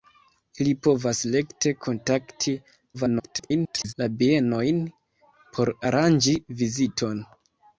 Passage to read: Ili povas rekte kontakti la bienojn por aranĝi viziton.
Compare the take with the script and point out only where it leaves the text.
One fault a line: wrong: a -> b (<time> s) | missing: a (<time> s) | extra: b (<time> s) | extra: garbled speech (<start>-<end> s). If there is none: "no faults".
extra: garbled speech (2.9-3.9 s)